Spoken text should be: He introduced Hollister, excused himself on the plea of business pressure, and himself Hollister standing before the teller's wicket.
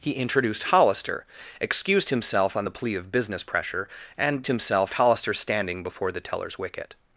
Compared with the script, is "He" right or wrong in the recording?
right